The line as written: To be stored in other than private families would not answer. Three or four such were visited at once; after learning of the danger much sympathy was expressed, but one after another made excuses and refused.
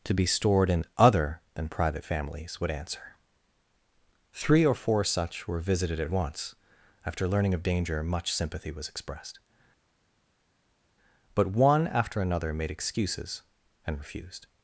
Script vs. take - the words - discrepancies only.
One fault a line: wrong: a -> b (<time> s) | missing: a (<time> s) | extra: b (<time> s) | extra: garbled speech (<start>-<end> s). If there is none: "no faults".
missing: not (2.7 s)
missing: the (7.6 s)